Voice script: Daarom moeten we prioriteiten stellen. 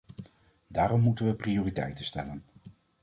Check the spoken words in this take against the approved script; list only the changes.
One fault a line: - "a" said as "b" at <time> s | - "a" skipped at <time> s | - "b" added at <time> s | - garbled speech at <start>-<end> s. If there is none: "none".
none